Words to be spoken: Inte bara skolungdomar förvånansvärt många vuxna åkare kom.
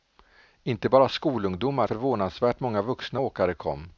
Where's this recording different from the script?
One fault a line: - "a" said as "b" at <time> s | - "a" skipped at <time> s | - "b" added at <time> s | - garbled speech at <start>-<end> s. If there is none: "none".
none